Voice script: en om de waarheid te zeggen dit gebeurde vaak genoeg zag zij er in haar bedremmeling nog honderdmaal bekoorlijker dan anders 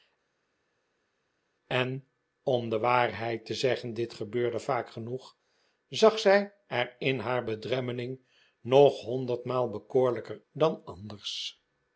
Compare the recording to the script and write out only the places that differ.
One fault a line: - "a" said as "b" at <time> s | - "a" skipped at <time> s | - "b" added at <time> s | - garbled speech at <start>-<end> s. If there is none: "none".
none